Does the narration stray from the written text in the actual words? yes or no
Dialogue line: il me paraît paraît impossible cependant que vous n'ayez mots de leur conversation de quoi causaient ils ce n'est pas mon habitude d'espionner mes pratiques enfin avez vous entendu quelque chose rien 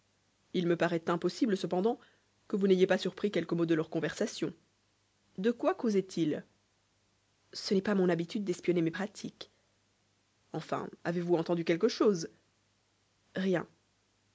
yes